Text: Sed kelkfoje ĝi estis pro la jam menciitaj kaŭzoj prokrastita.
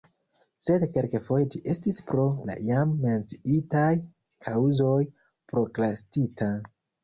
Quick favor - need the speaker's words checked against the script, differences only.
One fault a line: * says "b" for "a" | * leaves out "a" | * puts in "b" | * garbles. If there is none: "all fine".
all fine